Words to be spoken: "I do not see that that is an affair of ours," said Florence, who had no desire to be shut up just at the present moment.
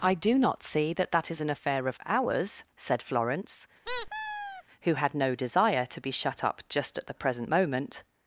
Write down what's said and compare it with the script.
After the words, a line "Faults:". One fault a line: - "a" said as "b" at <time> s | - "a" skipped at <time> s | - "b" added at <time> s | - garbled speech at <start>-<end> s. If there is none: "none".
"I do not see that that is an affair of ours," said Florence, who had no desire to be shut up just at the present moment.
Faults:
none